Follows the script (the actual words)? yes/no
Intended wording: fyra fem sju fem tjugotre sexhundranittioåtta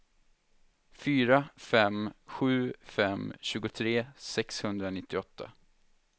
yes